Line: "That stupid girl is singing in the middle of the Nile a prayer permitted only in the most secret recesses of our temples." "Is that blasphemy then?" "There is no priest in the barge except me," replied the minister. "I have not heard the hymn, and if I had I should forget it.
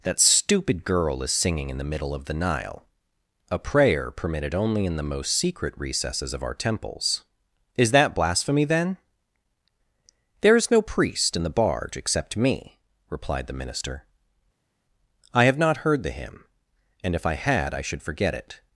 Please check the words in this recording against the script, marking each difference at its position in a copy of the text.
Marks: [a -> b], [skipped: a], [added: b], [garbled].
"That stupid girl is singing in the middle of the Nile a prayer permitted only in the most secret recesses of our temples." "Is that blasphemy then?" "There is no priest in the barge except me," replied the minister. "I have not heard the hymn, and if I had I should forget it.